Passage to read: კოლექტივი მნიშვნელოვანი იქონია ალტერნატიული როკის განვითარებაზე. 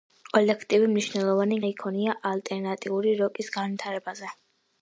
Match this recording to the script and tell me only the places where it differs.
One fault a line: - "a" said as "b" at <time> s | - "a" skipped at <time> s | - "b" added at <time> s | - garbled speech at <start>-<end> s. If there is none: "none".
none